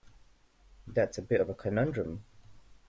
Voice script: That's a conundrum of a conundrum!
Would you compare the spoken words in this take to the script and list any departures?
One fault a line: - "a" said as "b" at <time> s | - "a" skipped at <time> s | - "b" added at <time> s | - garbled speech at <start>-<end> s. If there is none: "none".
- "conundrum" said as "bit" at 1.2 s